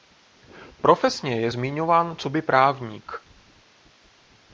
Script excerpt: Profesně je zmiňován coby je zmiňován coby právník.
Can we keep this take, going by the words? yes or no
no